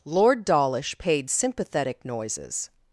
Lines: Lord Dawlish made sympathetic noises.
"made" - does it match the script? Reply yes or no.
no